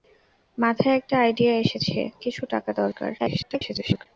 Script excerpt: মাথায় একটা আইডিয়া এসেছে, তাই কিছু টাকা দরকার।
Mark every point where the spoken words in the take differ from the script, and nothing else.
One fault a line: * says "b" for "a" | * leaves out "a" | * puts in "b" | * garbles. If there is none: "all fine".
* leaves out "তাই"
* garbles